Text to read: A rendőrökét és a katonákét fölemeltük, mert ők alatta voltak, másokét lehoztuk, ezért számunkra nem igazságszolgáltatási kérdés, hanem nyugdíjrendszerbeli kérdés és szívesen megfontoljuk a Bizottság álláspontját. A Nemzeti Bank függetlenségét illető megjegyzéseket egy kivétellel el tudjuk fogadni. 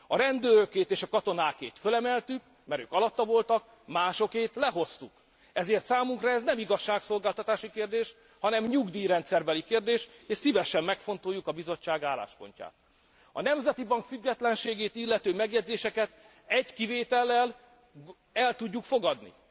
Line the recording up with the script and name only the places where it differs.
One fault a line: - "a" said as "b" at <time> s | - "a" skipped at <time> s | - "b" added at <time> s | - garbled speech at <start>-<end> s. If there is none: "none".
- "ez" added at 6.3 s